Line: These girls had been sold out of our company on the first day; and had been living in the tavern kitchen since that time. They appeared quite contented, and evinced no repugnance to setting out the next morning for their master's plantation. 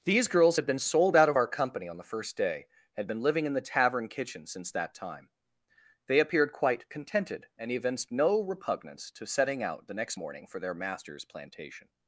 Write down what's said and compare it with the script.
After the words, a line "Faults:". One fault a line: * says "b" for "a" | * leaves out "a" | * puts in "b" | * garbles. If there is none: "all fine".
These girls had been sold out of our company on the first day; had been living in the tavern kitchen since that time. They appeared quite contented, and evinced no repugnance to setting out the next morning for their master's plantation.
Faults:
* leaves out "and"